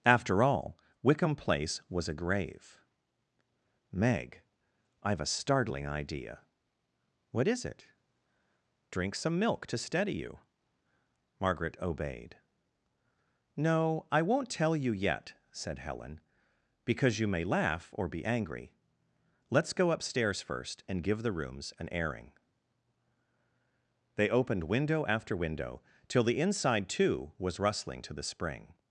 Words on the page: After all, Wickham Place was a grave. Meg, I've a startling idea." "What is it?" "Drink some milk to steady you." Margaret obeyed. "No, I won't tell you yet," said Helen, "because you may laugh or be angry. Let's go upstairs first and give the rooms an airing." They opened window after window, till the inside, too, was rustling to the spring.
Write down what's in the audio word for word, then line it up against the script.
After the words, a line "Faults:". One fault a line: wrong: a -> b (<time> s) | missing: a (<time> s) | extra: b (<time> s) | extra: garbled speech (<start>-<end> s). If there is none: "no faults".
After all, Wickham Place was a grave. Meg, I've a startling idea." "What is it?" "Drink some milk to steady you." Margaret obeyed. "No, I won't tell you yet," said Helen, "because you may laugh or be angry. Let's go upstairs first and give the rooms an airing." They opened window after window, till the inside, too, was rustling to the spring.
Faults:
no faults